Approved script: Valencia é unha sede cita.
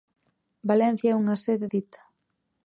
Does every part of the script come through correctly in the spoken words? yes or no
yes